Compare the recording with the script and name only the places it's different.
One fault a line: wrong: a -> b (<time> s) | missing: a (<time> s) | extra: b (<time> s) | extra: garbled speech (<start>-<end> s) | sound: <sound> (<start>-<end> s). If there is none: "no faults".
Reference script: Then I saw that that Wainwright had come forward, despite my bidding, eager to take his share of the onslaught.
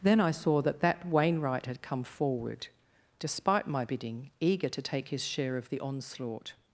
no faults